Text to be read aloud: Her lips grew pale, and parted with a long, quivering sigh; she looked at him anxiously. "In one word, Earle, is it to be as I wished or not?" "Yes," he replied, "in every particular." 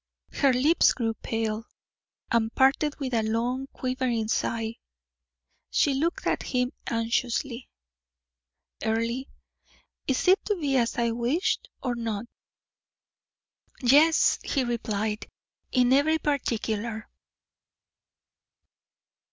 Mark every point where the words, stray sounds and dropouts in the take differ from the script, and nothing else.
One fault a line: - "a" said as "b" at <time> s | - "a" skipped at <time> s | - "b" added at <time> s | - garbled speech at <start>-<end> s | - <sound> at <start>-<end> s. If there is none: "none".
- "In one word" skipped at 7.7 s